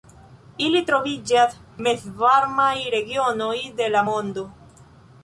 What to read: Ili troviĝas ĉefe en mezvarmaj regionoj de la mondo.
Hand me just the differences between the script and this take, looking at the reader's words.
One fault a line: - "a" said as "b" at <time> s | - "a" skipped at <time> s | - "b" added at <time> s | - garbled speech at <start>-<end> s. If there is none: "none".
- "ĉefe en" skipped at 1.5 s